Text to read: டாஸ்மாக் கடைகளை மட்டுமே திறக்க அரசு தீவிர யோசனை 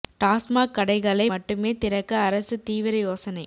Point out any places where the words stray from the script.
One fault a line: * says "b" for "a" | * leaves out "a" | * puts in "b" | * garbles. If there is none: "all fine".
all fine